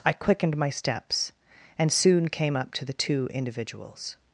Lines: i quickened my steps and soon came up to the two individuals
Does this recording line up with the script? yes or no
yes